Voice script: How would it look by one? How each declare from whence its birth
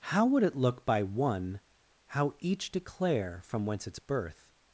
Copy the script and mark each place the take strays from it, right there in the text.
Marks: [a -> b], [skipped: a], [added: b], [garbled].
How would it look by one? How each declare from whence its birth